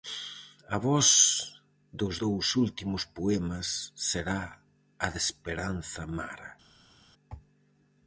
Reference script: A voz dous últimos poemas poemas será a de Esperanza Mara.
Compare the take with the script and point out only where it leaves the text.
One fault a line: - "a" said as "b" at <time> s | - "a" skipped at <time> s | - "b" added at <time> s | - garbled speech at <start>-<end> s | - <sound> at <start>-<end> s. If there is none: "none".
- "dos" added at 2.0 s
- "poemas" skipped at 3.9 s